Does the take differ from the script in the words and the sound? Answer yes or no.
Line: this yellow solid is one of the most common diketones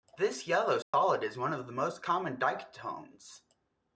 yes